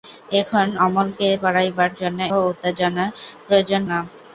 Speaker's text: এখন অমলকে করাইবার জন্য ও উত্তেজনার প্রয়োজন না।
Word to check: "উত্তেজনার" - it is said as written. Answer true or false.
true